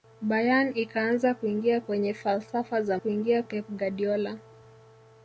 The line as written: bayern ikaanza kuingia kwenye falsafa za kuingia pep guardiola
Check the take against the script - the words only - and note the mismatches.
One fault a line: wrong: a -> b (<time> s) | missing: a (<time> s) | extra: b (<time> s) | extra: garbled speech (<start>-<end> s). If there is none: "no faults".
no faults